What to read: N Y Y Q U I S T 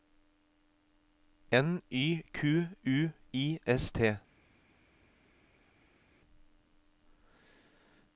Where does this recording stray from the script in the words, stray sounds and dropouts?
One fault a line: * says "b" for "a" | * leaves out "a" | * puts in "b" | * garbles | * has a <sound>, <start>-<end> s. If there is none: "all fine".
* leaves out "Y"